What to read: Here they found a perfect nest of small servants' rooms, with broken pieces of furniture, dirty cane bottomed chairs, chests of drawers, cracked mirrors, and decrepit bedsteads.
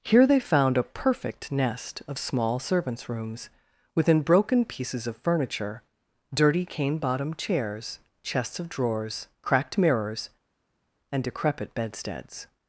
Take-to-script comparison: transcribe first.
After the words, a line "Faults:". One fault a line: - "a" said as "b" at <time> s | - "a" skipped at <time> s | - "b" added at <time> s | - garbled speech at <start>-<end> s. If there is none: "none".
Here they found a perfect nest of small servants' rooms, within broken pieces of furniture, dirty cane bottomed chairs, chests of drawers, cracked mirrors, and decrepit bedsteads.
Faults:
- "with" said as "within" at 4.0 s